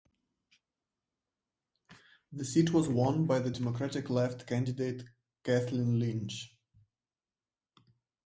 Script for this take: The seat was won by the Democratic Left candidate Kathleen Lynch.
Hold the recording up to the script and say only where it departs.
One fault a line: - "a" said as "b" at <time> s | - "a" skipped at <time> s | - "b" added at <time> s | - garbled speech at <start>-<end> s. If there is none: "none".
none